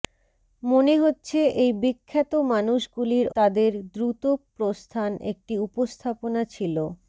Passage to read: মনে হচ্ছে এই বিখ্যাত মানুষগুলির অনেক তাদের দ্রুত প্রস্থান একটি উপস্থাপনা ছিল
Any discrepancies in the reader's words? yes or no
yes